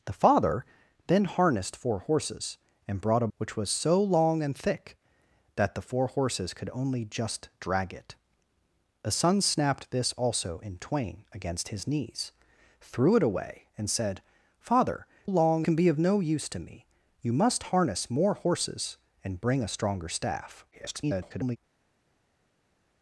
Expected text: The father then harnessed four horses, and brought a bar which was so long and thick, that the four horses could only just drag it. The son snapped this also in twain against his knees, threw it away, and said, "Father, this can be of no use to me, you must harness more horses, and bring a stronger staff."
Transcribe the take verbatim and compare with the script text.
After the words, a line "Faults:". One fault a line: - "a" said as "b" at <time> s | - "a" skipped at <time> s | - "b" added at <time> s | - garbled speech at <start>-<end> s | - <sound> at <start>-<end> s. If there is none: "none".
The father then harnessed four horses, and brought a which was so long and thick, that the four horses could only just drag it. The son snapped this also in twain against his knees, threw it away, and said, "Father, long can be of no use to me, you must harness more horses, and bring a stronger staff." [garbled]
Faults:
- "bar" skipped at 3.3 s
- "this" said as "long" at 15.2 s
- garbled speech at 20.7-21.6 s